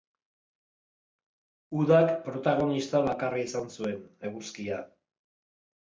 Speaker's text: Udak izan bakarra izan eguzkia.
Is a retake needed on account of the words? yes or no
yes